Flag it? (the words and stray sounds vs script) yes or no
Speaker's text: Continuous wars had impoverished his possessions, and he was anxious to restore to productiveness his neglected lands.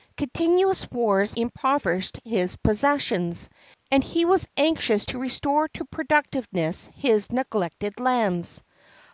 yes